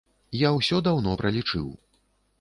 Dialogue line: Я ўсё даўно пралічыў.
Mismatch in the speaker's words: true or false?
false